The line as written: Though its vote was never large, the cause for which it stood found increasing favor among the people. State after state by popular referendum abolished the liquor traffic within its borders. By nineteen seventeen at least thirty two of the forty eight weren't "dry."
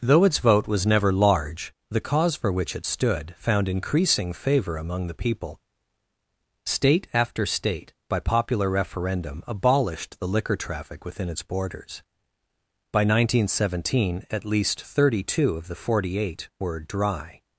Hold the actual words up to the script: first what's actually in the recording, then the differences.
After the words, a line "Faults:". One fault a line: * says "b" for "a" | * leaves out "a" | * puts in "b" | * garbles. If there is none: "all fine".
Though its vote was never large, the cause for which it stood found increasing favor among the people. State after state by popular referendum abolished the liquor traffic within its borders. By nineteen seventeen at least thirty two of the forty eight were "dry."
Faults:
* says "were" for "weren't"